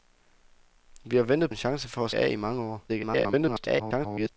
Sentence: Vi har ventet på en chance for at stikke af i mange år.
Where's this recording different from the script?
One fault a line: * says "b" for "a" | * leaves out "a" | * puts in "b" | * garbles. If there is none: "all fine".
* leaves out "på"
* leaves out "stikke"
* garbles